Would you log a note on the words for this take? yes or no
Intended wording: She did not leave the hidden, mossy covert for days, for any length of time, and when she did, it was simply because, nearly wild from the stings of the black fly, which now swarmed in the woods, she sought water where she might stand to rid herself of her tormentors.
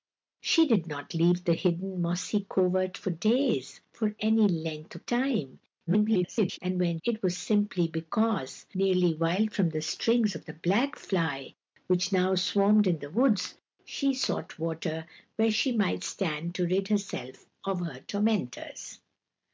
yes